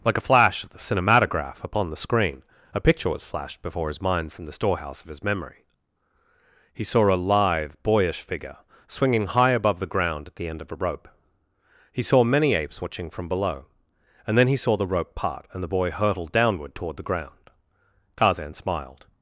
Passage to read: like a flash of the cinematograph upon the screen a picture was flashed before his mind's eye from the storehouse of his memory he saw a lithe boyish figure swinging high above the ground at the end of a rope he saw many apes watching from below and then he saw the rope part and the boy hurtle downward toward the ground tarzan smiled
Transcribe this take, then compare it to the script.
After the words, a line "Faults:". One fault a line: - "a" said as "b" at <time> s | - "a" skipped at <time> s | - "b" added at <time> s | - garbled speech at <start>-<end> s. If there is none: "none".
like a flash of the cinematograph upon the screen a picture was flashed before his mind's from the storehouse of his memory he saw a lithe boyish figure swinging high above the ground at the end of a rope he saw many apes watching from below and then he saw the rope part and the boy hurtle downward toward the ground tarzan smiled
Faults:
- "eye" skipped at 4.3 s